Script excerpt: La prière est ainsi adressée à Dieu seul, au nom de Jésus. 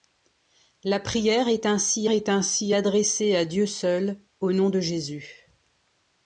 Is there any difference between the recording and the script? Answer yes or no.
yes